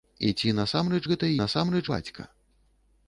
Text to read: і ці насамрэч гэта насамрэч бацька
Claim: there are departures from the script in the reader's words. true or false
false